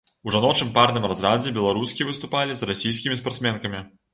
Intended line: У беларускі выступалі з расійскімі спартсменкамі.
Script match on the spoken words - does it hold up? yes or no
no